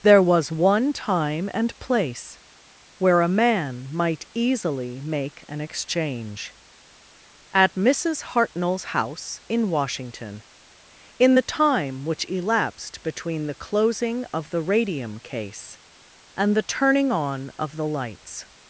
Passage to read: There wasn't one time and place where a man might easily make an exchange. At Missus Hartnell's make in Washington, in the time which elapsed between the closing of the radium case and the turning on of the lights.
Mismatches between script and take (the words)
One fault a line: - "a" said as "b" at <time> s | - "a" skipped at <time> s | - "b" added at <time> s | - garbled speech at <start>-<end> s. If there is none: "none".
- "wasn't" said as "was" at 0.2 s
- "make" said as "house" at 8.8 s